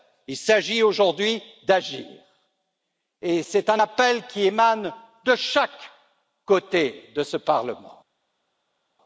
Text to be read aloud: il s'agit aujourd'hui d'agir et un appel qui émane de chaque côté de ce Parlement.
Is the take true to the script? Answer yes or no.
no